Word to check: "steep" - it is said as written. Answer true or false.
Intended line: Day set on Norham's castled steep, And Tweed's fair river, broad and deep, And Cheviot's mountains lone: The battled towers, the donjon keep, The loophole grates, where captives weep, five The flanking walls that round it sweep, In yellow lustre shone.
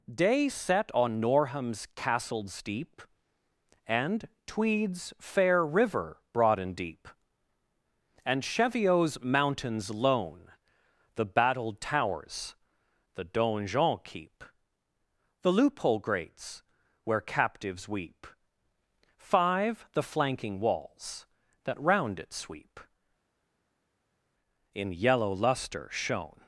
true